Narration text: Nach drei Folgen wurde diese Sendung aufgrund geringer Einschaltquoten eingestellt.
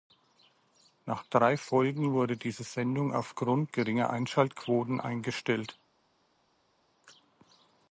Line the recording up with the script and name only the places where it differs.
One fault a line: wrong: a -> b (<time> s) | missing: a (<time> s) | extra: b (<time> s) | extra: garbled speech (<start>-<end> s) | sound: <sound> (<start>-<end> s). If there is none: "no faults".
no faults